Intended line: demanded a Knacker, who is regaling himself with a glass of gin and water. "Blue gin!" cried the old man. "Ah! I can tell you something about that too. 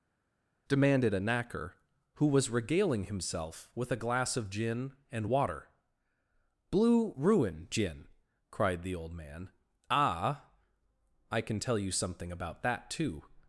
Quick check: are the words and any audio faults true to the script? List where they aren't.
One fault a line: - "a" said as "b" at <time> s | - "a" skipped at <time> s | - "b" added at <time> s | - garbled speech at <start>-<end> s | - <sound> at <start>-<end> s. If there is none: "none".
- "is" said as "was" at 2.3 s
- "ruin" added at 7.1 s